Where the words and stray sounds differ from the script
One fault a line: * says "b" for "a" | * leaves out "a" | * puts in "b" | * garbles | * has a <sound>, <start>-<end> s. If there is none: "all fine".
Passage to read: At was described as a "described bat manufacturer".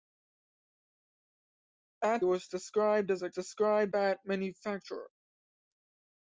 all fine